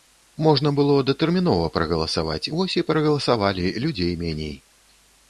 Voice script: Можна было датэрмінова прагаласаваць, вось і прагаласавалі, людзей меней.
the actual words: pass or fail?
pass